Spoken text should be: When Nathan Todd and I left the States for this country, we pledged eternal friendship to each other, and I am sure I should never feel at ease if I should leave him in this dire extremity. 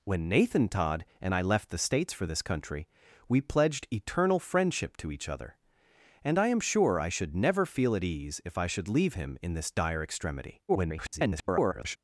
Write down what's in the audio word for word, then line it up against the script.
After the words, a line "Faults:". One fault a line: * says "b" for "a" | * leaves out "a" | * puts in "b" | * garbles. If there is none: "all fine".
When Nathan Todd and I left the States for this country, we pledged eternal friendship to each other, and I am sure I should never feel at ease if I should leave him in this dire extremity. [garbled]
Faults:
* garbles